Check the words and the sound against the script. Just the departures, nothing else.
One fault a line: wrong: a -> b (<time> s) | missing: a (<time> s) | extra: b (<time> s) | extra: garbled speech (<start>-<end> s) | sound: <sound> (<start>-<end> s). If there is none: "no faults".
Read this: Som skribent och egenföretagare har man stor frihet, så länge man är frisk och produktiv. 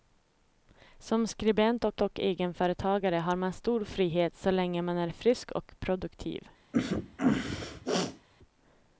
extra: och (2.0 s)
sound: sneeze (6.7-8.3 s)